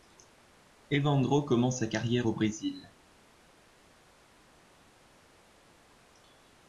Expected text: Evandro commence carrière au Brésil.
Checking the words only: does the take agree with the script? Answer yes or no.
no